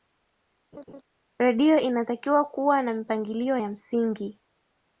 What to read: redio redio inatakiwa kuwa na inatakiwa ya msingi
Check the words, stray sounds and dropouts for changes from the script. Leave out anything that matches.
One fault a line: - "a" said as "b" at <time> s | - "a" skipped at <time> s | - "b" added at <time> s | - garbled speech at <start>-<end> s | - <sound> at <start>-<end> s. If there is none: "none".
- laugh at 0.7-1.0 s
- "redio" skipped at 1.8 s
- "inatakiwa" said as "mipangilio" at 2.9 s